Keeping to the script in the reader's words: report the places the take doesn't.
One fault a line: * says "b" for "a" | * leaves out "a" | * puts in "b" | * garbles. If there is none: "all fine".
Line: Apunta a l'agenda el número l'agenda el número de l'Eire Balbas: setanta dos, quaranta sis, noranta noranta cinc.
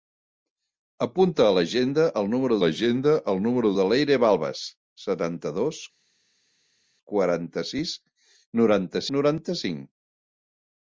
all fine